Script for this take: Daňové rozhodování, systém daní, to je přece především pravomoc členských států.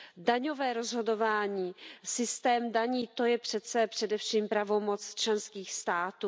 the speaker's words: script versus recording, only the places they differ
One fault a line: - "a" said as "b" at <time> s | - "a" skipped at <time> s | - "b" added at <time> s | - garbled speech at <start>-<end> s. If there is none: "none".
none